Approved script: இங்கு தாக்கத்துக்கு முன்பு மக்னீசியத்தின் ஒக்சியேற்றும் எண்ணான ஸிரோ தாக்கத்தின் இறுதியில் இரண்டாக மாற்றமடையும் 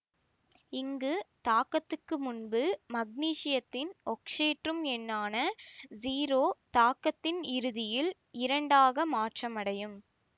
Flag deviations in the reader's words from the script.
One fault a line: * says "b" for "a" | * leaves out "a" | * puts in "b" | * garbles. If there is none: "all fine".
all fine